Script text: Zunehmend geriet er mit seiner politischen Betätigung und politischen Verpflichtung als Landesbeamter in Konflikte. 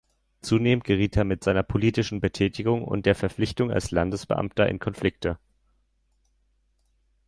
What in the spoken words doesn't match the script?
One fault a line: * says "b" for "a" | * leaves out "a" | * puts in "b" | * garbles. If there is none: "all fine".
* says "der" for "politischen"